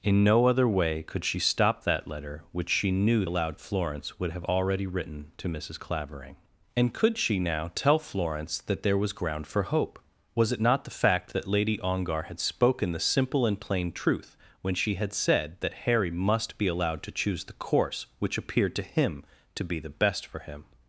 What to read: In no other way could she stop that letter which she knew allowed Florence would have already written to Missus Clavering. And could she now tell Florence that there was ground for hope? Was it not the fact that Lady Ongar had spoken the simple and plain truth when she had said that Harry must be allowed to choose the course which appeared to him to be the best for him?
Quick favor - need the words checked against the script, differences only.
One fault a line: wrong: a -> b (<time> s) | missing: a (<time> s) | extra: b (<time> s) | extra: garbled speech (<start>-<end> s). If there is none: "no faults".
no faults